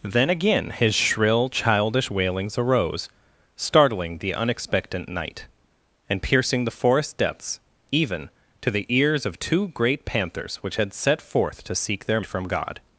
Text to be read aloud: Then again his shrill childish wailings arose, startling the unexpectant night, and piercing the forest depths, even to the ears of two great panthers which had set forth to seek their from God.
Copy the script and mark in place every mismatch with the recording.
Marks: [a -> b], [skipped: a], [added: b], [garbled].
Then again his shrill childish wailings arose, startling the unexpectant night, and piercing the forest depths, even to the ears of two great panthers which had set forth to seek their from God.